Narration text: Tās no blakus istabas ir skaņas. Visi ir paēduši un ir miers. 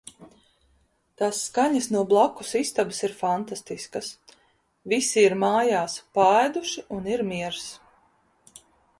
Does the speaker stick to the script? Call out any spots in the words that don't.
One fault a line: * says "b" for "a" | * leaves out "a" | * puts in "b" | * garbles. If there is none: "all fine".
* puts in "skaņas"
* says "fantastiskas" for "skaņas"
* puts in "mājās"